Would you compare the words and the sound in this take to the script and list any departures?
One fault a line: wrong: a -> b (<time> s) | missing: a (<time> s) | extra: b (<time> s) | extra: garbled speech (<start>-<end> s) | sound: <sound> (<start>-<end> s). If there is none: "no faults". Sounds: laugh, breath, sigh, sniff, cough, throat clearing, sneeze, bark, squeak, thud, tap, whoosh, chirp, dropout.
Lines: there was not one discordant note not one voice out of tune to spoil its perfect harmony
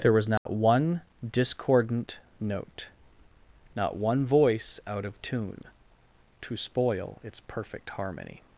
sound: dropout (0.4-0.5 s)